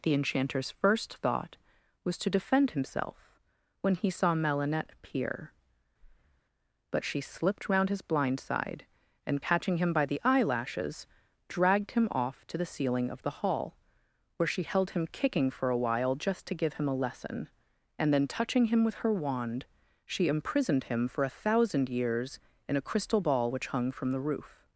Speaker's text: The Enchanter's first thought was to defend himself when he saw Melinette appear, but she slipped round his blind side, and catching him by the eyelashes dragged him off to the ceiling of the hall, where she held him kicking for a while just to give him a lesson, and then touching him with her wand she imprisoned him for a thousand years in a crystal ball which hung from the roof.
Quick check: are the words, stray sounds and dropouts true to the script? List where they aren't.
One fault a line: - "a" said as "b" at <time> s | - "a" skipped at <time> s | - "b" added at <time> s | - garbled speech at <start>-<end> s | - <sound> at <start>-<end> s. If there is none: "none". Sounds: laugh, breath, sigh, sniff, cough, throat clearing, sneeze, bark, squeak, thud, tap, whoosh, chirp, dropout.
- breath at 6.0-6.4 s